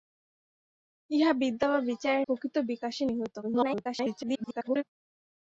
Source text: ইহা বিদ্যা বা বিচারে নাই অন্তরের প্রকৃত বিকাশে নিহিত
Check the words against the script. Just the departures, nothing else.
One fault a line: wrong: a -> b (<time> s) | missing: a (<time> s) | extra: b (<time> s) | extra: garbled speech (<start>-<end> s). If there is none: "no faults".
missing: নাই অন্তরের (2.2 s)
extra: garbled speech (3.4-4.8 s)